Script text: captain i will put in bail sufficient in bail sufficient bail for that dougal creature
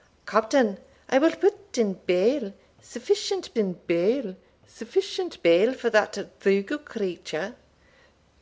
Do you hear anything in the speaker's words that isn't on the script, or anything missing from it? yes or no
no